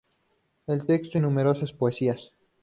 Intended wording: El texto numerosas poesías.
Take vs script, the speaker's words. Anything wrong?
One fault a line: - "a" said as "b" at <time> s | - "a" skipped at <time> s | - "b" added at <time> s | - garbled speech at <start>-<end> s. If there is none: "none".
none